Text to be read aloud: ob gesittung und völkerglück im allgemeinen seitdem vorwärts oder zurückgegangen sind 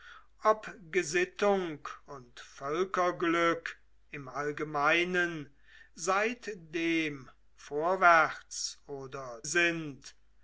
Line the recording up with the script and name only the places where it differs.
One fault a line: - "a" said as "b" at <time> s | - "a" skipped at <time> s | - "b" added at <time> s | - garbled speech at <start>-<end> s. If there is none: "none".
- "zurückgegangen" skipped at 9.4 s